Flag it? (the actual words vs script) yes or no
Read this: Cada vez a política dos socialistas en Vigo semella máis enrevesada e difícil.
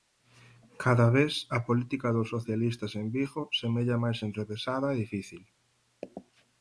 no